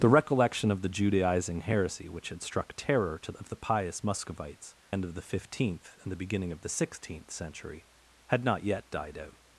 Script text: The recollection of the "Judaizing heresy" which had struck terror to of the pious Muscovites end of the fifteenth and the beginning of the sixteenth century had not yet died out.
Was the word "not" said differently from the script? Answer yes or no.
no